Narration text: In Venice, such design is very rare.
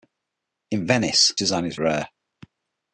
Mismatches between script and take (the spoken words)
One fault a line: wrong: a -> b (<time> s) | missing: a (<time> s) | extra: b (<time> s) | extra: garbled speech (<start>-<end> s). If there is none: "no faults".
missing: such (1.4 s)
missing: very (1.8 s)